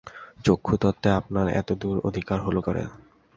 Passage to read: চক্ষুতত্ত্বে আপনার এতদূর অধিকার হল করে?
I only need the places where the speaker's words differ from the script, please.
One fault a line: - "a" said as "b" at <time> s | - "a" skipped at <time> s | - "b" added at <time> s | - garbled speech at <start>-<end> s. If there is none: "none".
none